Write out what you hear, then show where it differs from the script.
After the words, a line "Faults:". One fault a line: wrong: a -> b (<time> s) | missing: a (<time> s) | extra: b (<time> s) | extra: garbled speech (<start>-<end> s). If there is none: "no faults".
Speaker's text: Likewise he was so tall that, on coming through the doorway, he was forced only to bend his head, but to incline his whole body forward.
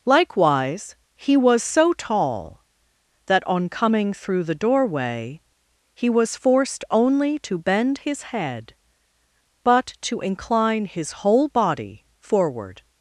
Likewise he was so tall that, on coming through the doorway, he was forced only to bend his head, but to incline his whole body forward.
Faults:
no faults